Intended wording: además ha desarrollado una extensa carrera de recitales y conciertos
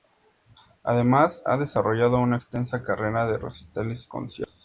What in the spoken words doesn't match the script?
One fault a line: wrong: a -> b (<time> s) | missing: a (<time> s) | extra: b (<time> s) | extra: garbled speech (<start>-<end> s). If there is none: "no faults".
no faults